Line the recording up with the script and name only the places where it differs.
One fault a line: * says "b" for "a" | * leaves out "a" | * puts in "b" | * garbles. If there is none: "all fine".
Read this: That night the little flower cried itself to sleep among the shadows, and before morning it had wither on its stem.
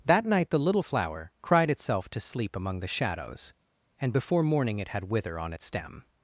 all fine